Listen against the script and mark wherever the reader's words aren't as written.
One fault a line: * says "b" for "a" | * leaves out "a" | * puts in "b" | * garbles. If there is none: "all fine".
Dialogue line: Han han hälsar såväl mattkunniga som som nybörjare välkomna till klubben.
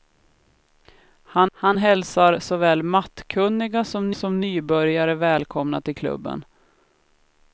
all fine